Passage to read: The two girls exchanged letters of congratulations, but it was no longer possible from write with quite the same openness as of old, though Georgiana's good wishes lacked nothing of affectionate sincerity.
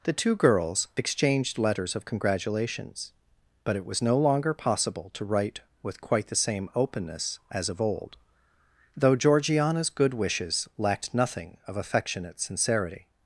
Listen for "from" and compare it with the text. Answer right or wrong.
wrong